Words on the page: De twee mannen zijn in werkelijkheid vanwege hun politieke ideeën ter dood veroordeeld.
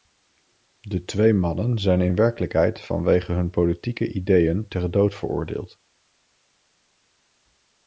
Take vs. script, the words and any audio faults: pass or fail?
pass